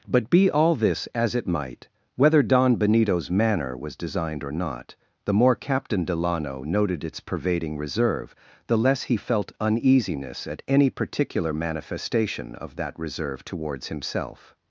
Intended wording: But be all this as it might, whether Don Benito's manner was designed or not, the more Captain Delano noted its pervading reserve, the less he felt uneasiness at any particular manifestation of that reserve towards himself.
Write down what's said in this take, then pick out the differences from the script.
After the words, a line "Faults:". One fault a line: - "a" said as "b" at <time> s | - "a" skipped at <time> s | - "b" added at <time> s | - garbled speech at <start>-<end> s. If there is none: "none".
But be all this as it might, whether Don Benito's manner was designed or not, the more Captain Delano noted its pervading reserve, the less he felt uneasiness at any particular manifestation of that reserve towards himself.
Faults:
none